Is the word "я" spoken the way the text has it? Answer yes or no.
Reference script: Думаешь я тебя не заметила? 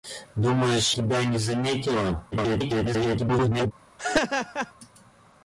no